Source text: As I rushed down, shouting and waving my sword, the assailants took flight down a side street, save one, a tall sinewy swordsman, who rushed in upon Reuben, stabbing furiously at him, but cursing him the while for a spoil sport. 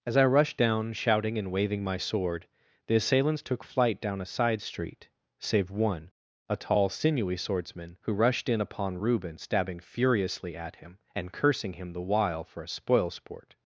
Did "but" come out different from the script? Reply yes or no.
yes